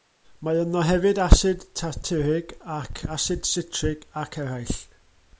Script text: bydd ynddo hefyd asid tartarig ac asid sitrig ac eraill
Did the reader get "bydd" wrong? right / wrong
wrong